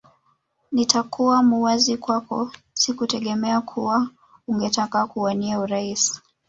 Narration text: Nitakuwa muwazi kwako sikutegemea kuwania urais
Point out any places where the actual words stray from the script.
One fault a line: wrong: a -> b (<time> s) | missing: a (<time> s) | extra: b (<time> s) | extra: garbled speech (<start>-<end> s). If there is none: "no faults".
extra: kuwa ungetaka (3.6 s)